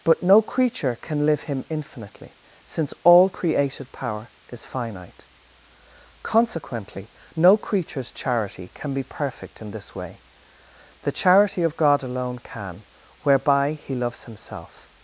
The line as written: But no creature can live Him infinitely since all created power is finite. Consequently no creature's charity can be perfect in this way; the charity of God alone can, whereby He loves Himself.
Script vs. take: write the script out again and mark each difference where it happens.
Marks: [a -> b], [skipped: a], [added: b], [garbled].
But no creature can live Him infinitely since all created power is finite. Consequently no creature's charity can be perfect in this way; the charity of God alone can, whereby He loves Himself.